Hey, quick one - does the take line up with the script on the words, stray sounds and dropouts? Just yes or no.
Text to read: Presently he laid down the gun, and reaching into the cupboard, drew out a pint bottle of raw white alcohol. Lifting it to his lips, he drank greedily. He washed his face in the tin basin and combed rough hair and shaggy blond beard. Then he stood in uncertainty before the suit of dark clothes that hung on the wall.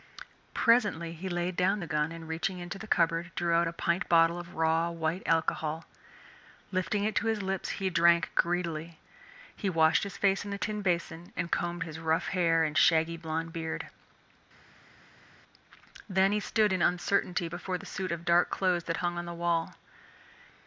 no